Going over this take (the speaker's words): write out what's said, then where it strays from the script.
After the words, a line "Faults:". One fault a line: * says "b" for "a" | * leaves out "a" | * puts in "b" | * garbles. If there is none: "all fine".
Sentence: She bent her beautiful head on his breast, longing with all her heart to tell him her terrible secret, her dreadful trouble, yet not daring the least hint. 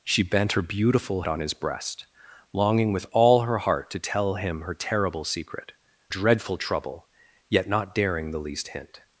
She bent her beautiful on his breast, longing with all her heart to tell him her terrible secret, dreadful trouble, yet not daring the least hint.
Faults:
* leaves out "head"
* leaves out "her"